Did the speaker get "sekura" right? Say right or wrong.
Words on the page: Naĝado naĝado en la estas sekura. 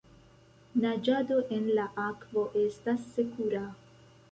right